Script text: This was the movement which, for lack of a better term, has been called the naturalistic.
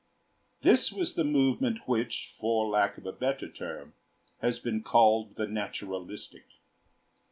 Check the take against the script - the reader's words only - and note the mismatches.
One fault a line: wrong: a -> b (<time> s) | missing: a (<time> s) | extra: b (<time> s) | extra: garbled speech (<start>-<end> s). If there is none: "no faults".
no faults